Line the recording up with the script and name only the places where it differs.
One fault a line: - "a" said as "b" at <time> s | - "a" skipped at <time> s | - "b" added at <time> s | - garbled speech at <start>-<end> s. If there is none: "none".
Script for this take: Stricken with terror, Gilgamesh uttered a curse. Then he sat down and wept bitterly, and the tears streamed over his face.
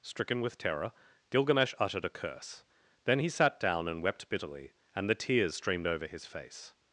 none